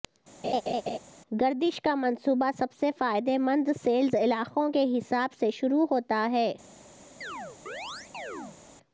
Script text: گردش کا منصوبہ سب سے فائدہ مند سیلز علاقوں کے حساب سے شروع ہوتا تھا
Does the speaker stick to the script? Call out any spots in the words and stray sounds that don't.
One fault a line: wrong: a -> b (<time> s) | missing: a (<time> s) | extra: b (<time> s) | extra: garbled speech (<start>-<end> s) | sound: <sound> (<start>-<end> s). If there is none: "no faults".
sound: laugh (0.4-1.0 s)
wrong: تھا -> ہے (6.3 s)
sound: chirp (7.2-8.6 s)